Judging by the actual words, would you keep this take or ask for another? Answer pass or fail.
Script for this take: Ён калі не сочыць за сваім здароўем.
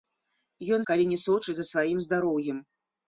pass